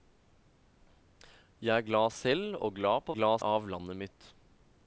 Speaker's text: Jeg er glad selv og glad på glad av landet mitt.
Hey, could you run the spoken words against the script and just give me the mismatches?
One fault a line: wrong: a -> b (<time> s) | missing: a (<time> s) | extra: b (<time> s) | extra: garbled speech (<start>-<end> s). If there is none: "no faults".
no faults